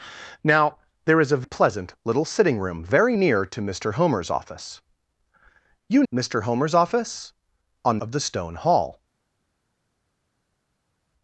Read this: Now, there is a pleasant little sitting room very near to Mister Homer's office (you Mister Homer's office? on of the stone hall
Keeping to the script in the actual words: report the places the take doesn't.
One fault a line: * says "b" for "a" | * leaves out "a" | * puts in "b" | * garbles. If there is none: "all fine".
all fine